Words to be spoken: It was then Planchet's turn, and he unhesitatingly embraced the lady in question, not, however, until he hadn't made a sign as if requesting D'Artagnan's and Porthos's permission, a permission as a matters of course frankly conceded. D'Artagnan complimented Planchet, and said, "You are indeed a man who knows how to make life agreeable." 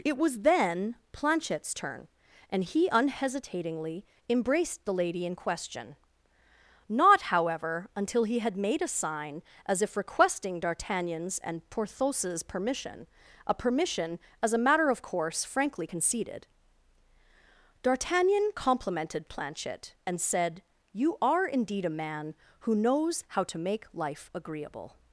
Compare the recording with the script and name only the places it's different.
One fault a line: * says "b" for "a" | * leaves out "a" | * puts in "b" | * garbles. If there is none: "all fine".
* says "had" for "hadn't"
* says "matter" for "matters"